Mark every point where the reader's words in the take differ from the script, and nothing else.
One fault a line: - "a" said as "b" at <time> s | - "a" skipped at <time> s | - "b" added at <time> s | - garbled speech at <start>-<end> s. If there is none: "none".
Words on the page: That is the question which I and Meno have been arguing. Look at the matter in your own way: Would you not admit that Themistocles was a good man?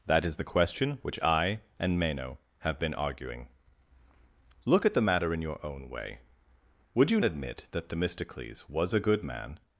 - "not" skipped at 7.2 s